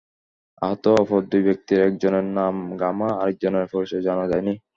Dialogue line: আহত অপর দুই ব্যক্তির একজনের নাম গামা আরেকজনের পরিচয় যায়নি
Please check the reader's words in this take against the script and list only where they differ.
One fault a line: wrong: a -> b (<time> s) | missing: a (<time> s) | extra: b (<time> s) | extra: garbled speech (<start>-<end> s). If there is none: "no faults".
extra: জানা (4.1 s)